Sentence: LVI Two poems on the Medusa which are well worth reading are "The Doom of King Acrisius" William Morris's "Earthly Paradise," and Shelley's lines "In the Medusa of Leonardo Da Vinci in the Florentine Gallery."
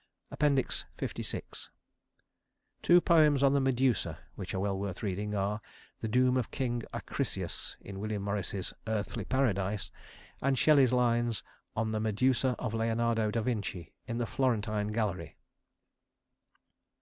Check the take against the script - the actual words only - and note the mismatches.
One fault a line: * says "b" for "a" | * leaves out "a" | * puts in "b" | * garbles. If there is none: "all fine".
* puts in "in"
* says "On" for "In"